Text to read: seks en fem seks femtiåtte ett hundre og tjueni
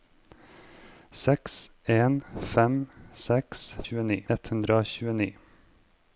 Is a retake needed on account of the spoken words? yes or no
yes